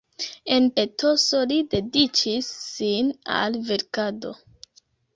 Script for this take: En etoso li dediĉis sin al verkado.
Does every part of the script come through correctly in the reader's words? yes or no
yes